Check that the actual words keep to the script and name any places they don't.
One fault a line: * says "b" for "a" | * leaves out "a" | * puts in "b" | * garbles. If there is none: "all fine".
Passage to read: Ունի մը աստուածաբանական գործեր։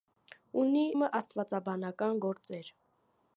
all fine